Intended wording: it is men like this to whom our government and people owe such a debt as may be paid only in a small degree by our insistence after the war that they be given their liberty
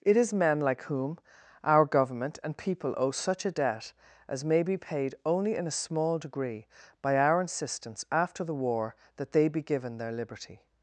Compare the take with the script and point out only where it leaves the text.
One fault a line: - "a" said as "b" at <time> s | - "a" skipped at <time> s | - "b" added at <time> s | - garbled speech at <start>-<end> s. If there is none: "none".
- "this to" skipped at 0.8 s